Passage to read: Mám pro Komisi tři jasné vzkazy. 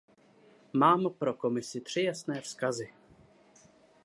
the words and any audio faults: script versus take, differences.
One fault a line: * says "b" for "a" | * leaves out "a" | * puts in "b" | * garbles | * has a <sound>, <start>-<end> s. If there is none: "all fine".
all fine